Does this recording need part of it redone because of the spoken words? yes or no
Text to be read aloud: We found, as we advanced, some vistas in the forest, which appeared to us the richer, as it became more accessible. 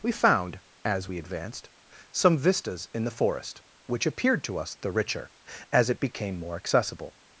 no